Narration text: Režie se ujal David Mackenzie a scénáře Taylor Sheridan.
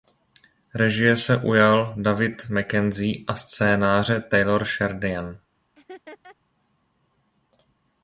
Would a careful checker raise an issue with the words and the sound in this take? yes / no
yes